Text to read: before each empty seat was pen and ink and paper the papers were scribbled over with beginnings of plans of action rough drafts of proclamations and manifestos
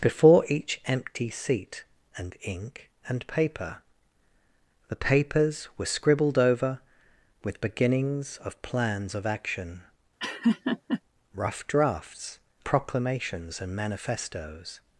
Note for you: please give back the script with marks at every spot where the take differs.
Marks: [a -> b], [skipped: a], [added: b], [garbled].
before each empty seat [skipped: was pen] and ink and paper the papers were scribbled over with beginnings of plans of action rough drafts [skipped: of] proclamations and manifestos